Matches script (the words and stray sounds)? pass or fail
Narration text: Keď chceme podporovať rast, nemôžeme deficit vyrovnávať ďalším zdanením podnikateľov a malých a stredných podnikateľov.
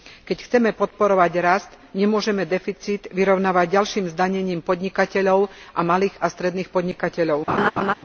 fail